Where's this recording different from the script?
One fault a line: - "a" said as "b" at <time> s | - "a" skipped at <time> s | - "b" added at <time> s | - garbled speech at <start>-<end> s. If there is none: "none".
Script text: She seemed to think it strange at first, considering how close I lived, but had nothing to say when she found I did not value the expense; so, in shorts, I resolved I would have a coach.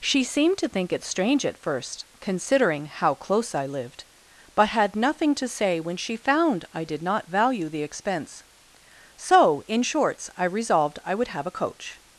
none